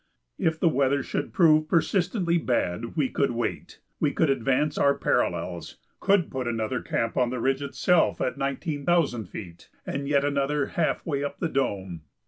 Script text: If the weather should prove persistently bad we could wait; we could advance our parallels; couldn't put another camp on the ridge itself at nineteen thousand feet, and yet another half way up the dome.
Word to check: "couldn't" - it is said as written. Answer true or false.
false